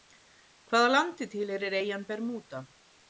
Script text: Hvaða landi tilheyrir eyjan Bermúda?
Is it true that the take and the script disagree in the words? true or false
false